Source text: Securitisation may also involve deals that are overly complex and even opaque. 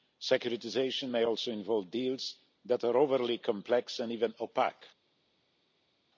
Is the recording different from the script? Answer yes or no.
no